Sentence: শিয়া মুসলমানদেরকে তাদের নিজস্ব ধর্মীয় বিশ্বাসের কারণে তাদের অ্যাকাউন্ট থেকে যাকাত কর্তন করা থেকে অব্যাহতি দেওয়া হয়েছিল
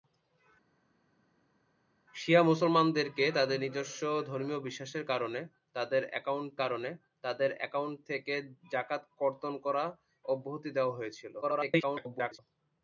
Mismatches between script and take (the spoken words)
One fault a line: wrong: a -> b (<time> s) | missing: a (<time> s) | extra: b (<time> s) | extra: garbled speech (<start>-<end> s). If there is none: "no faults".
extra: কারণে তাদের অ্যাকাউন্ট (6.6 s)
missing: থেকে (9.8 s)
extra: garbled speech (11.4-12.4 s)